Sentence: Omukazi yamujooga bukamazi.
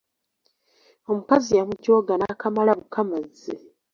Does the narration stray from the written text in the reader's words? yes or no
yes